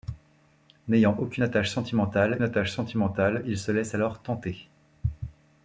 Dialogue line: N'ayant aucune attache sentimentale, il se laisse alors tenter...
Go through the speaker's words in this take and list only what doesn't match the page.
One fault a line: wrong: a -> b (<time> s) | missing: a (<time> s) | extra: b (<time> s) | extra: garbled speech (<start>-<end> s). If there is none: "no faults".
extra: attache sentimentale (2.4 s)